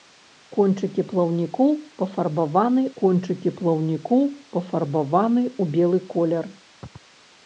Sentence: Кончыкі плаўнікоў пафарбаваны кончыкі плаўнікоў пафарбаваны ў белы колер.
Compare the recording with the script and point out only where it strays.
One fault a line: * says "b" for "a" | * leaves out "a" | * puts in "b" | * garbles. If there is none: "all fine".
all fine